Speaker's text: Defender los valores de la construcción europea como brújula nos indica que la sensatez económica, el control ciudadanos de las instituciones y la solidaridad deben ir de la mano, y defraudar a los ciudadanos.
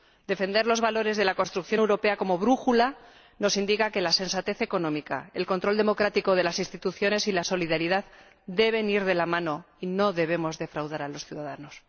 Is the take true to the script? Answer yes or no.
no